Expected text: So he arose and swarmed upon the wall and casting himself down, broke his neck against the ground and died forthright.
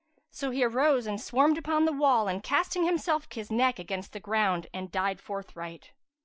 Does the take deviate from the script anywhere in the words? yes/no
yes